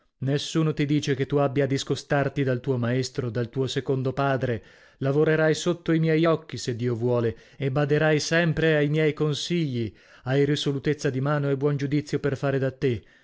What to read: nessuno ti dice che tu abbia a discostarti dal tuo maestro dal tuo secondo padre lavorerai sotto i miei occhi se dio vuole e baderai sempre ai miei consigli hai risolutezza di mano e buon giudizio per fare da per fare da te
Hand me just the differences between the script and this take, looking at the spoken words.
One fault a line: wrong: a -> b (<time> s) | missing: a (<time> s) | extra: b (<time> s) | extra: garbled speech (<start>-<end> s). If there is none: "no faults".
missing: per fare da (12.7 s)